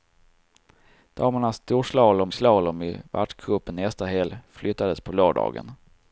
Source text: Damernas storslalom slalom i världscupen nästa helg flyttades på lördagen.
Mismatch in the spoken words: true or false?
false